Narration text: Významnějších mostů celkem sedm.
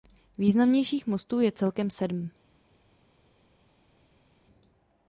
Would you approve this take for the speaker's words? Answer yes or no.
no